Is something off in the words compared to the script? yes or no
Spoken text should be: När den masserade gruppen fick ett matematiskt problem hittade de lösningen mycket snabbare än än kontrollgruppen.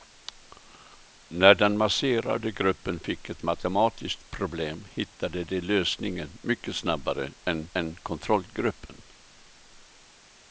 no